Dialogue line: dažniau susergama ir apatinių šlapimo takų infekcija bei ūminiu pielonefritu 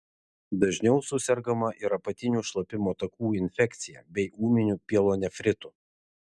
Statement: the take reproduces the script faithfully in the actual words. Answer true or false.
true